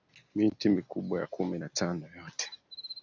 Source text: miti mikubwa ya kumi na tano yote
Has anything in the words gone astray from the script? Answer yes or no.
no